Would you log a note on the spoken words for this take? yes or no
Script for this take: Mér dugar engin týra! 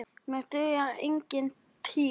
no